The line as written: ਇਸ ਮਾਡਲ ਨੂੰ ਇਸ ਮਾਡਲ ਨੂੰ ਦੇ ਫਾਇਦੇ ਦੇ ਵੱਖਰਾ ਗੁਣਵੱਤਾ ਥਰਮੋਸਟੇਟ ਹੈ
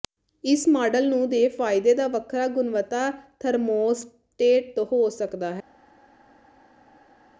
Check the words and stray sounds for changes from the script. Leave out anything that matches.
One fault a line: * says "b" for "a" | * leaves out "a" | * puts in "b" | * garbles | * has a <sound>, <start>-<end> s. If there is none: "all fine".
* leaves out "ਇਸ ਮਾਡਲ ਨੂੰ"
* says "ਦਾ" for "ਦੇ"
* puts in "ਹੋ ਸਕਦਾ"